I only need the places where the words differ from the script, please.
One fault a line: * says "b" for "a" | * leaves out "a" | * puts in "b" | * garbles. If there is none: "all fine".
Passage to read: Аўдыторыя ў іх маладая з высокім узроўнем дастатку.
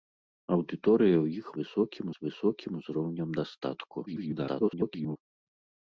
* says "высокім" for "маладая"
* garbles